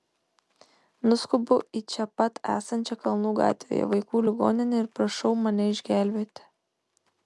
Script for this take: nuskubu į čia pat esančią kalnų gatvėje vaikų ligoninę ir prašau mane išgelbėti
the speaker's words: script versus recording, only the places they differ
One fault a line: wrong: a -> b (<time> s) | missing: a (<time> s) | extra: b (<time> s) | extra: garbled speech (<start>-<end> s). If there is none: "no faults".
no faults